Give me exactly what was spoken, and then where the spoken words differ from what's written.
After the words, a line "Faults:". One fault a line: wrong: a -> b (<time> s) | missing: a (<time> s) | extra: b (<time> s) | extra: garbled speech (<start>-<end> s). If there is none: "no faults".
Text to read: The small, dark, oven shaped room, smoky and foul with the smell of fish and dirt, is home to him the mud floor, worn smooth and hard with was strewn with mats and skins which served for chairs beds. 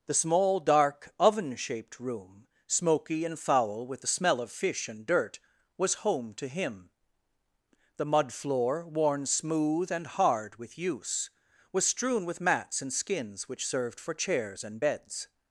The small, dark, oven shaped room, smoky and foul with the smell of fish and dirt, was home to him the mud floor, worn smooth and hard with use, was strewn with mats and skins which served for chairs and beds.
Faults:
wrong: is -> was (5.8 s)
extra: use (10.8 s)
extra: and (14.6 s)